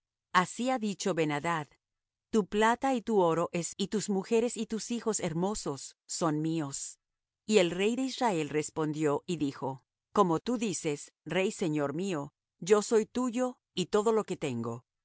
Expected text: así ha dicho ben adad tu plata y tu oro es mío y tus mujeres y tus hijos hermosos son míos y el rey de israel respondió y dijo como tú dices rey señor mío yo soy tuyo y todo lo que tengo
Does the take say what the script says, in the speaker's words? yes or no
no